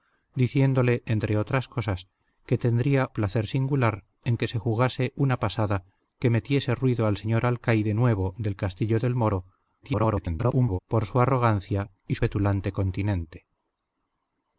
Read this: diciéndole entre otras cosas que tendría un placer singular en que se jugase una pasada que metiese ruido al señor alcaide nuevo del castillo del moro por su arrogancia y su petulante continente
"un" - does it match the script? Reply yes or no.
no